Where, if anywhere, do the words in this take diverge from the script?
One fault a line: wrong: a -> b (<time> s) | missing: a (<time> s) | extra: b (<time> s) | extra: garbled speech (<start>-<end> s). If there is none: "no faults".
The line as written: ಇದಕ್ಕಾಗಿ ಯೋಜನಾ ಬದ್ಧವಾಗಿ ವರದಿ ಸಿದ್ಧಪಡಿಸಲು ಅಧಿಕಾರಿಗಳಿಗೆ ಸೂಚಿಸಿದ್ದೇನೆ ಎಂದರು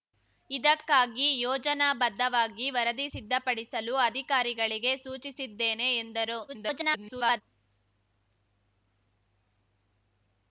extra: garbled speech (6.5-7.4 s)